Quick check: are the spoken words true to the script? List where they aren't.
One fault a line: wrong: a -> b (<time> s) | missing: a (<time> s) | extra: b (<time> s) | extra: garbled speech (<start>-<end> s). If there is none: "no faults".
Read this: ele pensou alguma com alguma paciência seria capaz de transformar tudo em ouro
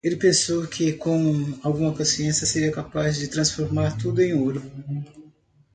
wrong: alguma -> que (0.7 s)